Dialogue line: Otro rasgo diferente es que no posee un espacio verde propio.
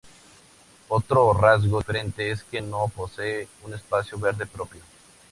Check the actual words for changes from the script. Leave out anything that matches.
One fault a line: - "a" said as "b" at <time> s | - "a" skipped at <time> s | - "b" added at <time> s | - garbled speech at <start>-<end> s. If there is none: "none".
none